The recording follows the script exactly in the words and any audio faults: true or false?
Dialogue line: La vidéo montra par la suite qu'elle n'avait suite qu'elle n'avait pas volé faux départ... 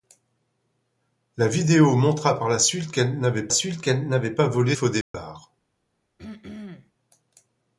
false